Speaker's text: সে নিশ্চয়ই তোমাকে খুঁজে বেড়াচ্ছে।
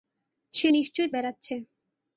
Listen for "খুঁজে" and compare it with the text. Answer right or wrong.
wrong